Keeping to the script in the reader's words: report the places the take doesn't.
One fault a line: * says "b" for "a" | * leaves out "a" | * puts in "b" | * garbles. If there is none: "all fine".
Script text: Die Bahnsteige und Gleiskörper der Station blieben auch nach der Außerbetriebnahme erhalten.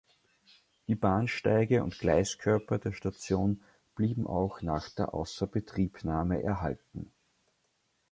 all fine